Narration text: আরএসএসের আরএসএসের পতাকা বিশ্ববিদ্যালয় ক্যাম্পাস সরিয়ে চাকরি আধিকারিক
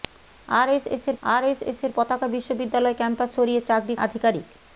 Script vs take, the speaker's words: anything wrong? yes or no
no